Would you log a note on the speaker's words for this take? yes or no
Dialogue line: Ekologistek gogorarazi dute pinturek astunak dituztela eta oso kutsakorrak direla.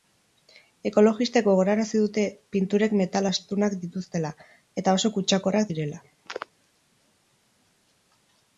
yes